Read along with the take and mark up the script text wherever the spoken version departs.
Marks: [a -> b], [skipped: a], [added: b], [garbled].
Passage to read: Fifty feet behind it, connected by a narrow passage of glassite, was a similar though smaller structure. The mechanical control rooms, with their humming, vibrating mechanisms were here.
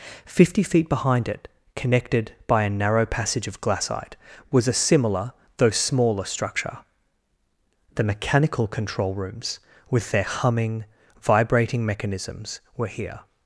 Fifty feet behind it, connected by a narrow passage of glassite, was a similar though smaller structure. The mechanical control rooms, with their humming, vibrating mechanisms were here.